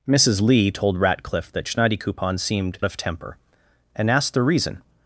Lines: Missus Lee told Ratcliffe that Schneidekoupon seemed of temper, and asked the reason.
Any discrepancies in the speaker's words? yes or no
no